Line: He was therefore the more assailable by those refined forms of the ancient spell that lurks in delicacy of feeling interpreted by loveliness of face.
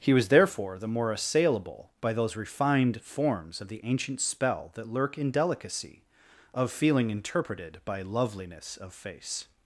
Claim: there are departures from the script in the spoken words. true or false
true